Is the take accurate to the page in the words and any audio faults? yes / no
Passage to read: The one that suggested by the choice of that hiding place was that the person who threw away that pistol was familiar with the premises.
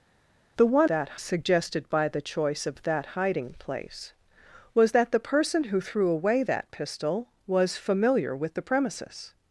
yes